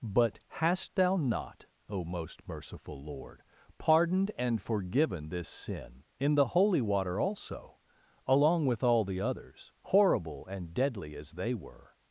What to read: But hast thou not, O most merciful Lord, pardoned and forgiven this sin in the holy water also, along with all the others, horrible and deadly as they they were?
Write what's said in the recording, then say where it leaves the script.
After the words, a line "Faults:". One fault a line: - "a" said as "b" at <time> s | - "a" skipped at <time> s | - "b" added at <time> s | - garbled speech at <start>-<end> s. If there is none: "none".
But hast thou not, O most merciful Lord, pardoned and forgiven this sin in the holy water also, along with all the others, horrible and deadly as they were?
Faults:
- "they" skipped at 11.5 s